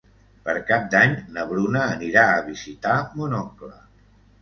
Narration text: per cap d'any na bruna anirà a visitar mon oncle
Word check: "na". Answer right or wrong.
right